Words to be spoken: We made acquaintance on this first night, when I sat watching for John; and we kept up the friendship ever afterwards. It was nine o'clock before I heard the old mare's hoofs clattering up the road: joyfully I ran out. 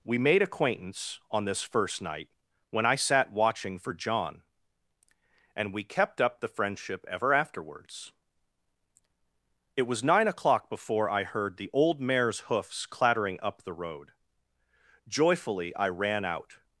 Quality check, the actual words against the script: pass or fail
pass